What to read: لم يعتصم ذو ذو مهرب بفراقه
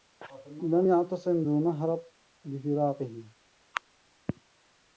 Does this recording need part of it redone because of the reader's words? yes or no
yes